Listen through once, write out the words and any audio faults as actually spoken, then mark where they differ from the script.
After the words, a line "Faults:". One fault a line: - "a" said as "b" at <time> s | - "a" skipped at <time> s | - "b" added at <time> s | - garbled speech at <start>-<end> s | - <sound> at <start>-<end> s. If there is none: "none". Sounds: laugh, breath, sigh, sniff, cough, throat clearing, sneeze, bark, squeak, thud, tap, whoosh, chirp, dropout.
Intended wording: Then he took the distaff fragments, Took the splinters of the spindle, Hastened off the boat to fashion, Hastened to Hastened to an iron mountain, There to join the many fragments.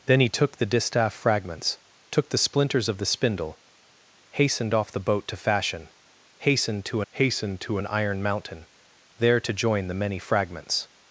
Then he took the distaff fragments, Took the splinters of the spindle, Hastened off the boat to fashion, Hastened to Hastened to an iron mountain, There to join the many fragments.
Faults:
none